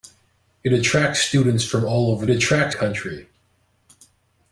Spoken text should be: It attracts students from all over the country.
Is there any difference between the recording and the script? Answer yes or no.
yes